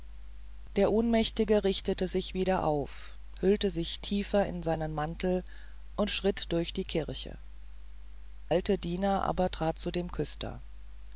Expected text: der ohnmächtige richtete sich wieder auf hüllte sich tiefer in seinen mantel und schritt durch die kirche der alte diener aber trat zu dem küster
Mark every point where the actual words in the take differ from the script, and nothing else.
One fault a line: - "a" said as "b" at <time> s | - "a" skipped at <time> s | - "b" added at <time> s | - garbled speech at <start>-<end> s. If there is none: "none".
- "der" skipped at 7.4 s